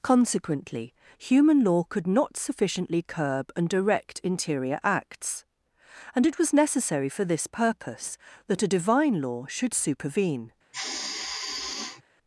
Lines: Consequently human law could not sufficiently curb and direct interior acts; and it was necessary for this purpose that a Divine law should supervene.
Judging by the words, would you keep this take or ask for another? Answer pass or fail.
pass